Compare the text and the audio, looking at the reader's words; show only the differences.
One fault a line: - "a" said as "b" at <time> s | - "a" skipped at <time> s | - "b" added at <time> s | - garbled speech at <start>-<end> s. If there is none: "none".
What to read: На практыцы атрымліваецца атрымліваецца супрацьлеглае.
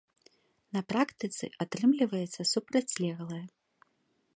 - "атрымліваецца" skipped at 2.4 s